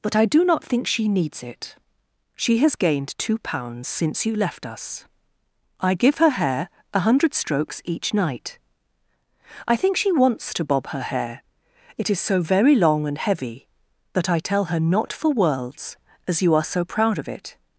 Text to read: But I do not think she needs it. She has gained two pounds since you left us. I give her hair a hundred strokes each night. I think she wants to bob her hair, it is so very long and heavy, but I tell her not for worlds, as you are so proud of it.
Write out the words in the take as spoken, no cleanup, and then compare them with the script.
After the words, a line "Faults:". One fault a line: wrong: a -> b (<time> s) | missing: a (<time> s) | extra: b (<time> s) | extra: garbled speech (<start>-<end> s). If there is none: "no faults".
But I do not think she needs it. She has gained two pounds since you left us. I give her hair a hundred strokes each night. I think she wants to bob her hair, it is so very long and heavy, that I tell her not for worlds, as you are so proud of it.
Faults:
wrong: but -> that (14.1 s)